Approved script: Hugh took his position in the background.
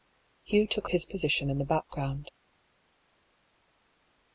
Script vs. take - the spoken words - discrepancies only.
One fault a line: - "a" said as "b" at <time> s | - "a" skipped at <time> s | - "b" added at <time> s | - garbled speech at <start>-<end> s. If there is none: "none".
none